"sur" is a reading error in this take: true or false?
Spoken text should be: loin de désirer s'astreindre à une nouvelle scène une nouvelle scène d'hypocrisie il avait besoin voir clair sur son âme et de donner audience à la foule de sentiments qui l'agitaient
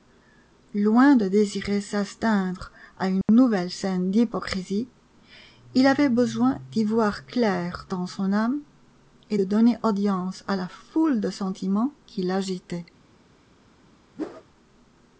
true